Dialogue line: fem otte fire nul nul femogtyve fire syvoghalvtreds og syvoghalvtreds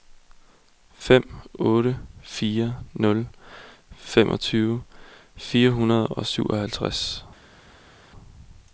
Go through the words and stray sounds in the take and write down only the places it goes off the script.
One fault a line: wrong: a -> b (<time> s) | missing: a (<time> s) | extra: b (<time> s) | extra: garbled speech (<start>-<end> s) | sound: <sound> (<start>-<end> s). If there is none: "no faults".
missing: nul (3.3 s)
wrong: syvoghalvtreds -> hundrede (5.7 s)